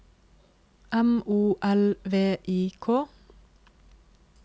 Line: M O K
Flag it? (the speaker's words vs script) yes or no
yes